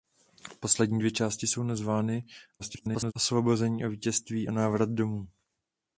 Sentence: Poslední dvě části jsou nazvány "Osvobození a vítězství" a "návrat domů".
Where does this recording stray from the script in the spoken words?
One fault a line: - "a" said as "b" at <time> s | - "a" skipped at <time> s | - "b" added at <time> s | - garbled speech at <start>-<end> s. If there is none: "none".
- garbled speech at 2.6-3.1 s